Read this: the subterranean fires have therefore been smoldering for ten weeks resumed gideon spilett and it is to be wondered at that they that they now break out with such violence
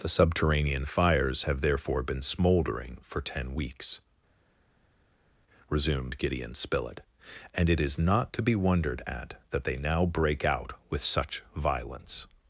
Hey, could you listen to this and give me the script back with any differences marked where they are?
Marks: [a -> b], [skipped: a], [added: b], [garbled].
the subterranean fires have therefore been smoldering for ten weeks resumed gideon spilett and it is [added: not] to be wondered at that they [skipped: that they] now break out with such violence